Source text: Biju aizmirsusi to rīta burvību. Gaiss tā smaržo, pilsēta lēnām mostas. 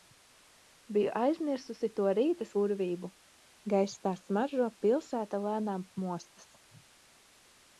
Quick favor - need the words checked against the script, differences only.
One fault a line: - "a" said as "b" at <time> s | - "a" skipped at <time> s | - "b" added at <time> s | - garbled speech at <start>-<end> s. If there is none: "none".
none